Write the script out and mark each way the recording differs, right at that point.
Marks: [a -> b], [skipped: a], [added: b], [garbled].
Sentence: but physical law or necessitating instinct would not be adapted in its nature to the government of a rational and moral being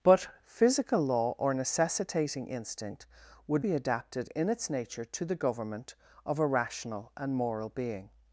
but physical law or necessitating instinct would [skipped: not] be adapted in its nature to the government of a rational and moral being